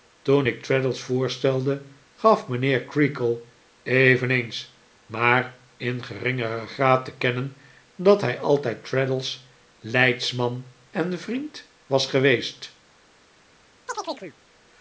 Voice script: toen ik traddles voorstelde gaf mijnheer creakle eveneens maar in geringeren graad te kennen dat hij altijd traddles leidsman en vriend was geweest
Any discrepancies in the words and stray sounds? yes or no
yes